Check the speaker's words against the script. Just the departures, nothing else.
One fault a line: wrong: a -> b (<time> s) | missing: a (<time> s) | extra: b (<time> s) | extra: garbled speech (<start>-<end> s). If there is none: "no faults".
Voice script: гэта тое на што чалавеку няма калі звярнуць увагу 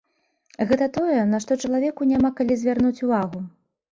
no faults